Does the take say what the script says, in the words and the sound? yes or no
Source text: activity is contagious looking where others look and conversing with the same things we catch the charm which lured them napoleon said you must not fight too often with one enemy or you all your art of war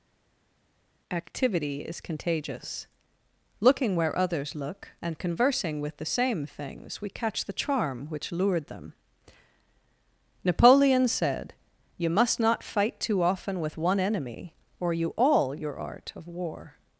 yes